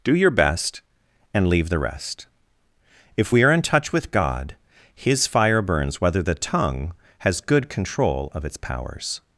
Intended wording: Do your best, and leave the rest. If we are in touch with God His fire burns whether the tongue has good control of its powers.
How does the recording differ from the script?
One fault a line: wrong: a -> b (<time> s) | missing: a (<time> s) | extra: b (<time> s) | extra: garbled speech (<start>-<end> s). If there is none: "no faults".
no faults